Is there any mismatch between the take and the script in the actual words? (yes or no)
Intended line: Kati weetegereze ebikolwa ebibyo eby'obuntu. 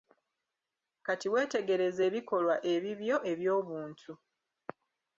no